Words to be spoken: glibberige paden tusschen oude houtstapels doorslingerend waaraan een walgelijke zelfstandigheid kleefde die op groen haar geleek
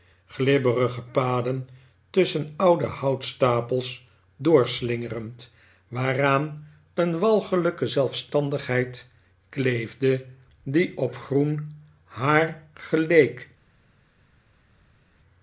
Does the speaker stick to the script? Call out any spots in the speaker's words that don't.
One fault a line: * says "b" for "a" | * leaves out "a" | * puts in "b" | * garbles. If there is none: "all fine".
all fine